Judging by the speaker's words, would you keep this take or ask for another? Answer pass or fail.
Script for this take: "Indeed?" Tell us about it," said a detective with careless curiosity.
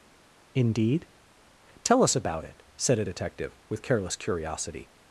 pass